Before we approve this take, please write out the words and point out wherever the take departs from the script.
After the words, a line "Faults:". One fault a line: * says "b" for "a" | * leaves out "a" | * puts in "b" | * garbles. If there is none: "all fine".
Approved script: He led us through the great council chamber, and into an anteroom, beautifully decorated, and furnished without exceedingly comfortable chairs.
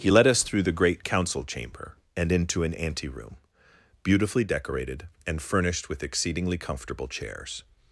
He led us through the great council chamber, and into an anteroom, beautifully decorated, and furnished with exceedingly comfortable chairs.
Faults:
* says "with" for "without"